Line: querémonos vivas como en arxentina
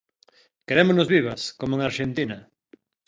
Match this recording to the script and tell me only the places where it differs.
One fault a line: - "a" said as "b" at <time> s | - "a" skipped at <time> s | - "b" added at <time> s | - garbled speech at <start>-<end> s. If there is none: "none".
none